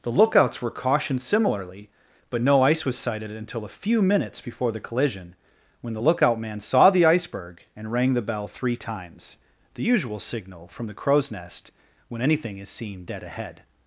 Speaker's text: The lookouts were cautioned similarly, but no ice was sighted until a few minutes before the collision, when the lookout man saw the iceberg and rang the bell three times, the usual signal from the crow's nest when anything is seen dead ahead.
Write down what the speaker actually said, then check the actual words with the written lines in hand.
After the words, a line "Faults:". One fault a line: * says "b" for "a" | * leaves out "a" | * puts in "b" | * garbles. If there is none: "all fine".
The lookouts were cautioned similarly, but no ice was sighted until a few minutes before the collision, when the lookout man saw the iceberg and rang the bell three times, the usual signal from the crow's nest when anything is seen dead ahead.
Faults:
all fine